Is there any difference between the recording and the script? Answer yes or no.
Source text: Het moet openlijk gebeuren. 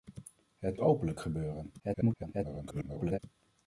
yes